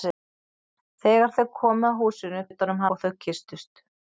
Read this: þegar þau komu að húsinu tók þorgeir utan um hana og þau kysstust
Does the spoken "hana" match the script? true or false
false